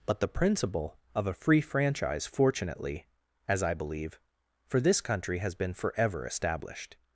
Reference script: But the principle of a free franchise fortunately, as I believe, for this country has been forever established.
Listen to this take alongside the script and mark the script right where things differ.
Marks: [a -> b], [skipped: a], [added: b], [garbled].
But the principle of a free franchise fortunately, as I believe, for this country has been forever established.